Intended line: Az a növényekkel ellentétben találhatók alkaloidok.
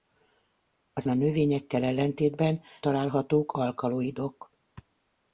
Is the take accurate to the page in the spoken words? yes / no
yes